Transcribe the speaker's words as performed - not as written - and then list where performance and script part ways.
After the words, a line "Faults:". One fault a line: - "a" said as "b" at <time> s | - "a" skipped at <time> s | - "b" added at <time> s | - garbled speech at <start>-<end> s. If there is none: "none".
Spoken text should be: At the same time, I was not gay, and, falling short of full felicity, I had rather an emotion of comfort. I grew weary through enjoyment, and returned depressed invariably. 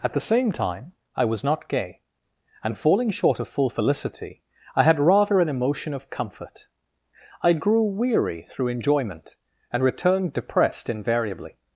At the same time, I was not gay, and, falling short of full felicity, I had rather an emotion of comfort. I grew weary through enjoyment, and returned depressed invariably.
Faults:
none